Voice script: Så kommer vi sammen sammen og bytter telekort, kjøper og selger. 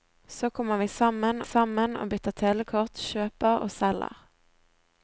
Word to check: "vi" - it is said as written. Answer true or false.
true